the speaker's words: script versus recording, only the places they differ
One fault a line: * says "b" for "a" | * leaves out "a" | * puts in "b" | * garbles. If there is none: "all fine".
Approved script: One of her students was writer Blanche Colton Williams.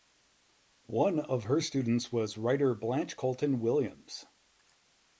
all fine